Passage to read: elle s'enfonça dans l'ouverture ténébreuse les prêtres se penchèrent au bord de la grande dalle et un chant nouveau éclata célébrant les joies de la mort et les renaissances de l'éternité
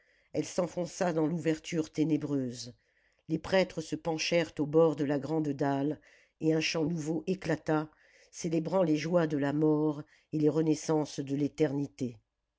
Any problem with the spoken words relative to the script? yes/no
no